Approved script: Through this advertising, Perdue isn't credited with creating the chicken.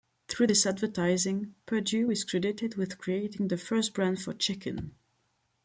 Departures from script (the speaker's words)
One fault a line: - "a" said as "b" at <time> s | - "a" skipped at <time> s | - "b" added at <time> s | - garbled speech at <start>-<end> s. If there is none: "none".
- "isn't" said as "is" at 2.1 s
- "first brand for" added at 3.6 s